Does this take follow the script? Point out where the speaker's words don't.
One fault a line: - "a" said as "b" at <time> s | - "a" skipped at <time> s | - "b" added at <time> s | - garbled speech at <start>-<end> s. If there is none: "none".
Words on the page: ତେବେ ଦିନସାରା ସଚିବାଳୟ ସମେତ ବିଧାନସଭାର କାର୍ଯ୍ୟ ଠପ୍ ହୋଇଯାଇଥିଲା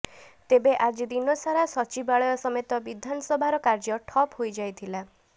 - "ଆଜି" added at 0.8 s